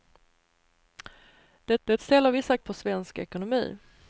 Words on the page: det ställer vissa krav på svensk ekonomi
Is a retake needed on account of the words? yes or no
yes